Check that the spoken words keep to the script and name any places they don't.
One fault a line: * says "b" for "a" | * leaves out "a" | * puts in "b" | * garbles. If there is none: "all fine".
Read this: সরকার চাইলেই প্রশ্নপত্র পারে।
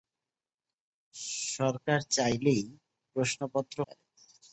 all fine